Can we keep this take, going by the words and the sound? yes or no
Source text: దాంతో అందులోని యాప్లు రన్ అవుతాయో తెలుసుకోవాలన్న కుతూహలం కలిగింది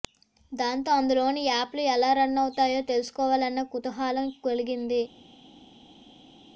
no